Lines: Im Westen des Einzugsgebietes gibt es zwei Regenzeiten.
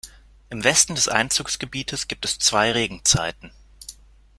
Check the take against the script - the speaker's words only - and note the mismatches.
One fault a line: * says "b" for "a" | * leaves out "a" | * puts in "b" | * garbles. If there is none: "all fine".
all fine